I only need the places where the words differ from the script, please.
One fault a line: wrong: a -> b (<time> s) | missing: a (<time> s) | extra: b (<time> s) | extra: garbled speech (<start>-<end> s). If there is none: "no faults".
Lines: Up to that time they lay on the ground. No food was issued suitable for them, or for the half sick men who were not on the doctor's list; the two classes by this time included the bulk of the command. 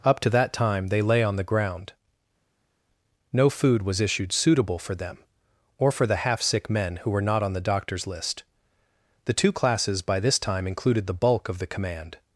no faults